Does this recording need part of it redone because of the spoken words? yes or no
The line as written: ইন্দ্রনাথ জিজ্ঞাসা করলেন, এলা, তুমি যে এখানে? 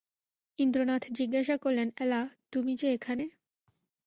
no